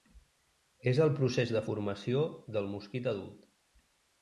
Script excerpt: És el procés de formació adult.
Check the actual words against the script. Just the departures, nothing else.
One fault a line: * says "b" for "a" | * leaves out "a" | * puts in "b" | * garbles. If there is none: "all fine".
* puts in "del mosquit"